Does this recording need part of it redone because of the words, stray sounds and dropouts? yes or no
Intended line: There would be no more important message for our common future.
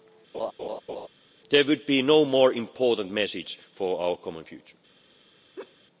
yes